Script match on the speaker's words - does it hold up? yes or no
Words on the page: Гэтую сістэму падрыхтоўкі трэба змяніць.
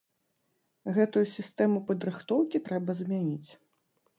yes